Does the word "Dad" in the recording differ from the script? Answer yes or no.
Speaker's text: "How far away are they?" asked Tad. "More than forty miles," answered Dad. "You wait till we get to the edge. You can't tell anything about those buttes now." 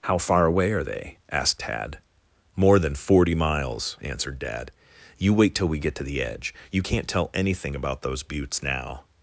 no